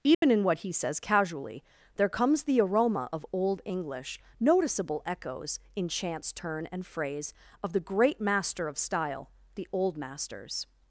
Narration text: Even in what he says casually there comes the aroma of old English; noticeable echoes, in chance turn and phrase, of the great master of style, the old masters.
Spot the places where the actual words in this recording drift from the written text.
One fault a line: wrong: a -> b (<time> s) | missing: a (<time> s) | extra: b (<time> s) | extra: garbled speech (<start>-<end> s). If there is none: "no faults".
no faults